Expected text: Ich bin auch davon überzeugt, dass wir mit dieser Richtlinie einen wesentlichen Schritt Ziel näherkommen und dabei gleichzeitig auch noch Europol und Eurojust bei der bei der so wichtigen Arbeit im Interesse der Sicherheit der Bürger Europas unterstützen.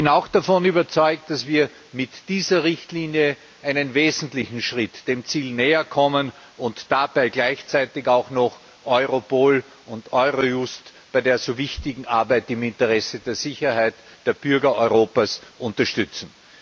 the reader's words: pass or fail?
fail